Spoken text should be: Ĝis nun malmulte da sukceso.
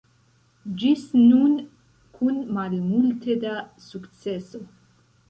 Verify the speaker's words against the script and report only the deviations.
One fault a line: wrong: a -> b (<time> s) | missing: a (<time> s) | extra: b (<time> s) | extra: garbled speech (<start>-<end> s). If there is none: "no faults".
extra: kun (2.1 s)